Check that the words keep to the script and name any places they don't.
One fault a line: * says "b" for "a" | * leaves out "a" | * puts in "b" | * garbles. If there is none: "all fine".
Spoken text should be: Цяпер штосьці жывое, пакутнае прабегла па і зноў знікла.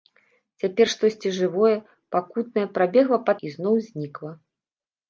all fine